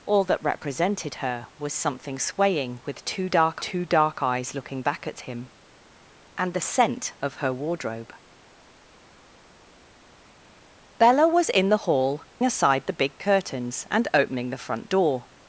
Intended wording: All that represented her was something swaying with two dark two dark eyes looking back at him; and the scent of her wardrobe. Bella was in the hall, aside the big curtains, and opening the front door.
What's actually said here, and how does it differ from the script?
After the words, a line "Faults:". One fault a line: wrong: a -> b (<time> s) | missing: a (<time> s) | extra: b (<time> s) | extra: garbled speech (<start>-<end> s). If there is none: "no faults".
All that represented her was something swaying with two dark two dark eyes looking back at him; and the scent of her wardrobe. Bella was in the hall, aside the big curtains, and opening the front door.
Faults:
no faults